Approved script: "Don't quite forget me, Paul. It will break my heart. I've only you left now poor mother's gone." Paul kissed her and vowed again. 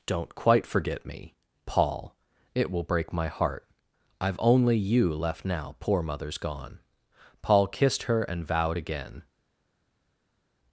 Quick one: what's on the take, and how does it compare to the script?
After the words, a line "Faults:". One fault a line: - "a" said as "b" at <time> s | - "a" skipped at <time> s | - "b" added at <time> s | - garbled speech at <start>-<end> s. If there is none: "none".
"Don't quite forget me, Paul. It will break my heart. I've only you left now poor mother's gone." Paul kissed her and vowed again.
Faults:
none